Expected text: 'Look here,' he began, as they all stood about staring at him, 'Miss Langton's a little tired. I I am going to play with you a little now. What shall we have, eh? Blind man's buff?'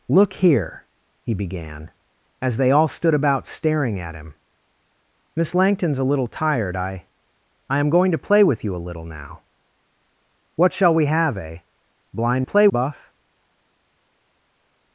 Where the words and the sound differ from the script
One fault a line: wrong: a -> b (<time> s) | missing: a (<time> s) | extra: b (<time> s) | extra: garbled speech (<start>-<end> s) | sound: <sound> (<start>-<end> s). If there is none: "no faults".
wrong: man's -> play (12.4 s)